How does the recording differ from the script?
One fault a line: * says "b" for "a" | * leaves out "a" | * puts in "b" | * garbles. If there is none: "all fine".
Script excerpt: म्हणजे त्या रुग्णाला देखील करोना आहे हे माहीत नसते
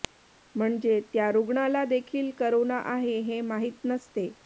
all fine